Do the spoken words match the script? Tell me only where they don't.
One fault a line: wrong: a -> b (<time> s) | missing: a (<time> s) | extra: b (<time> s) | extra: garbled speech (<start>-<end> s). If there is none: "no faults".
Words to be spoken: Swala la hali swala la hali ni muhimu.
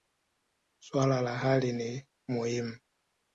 missing: swala la hali (1.7 s)